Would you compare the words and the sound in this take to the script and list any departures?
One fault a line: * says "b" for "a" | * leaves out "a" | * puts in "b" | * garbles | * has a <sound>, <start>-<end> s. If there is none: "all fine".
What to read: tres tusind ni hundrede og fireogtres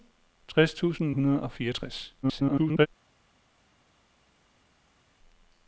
* leaves out "ni"
* garbles